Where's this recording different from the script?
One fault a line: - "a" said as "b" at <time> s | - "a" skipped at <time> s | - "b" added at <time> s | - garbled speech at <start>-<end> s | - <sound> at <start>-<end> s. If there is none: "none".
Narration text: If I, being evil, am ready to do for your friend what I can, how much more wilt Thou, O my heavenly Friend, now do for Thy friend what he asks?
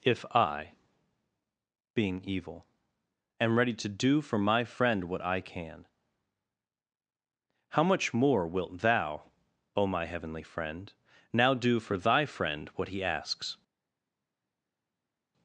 - "your" said as "my" at 4.4 s